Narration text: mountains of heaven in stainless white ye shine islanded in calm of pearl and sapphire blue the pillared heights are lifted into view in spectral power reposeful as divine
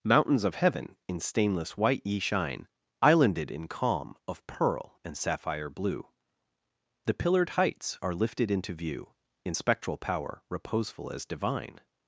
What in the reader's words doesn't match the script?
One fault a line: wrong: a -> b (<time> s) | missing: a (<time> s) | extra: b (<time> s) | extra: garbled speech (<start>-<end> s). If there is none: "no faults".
no faults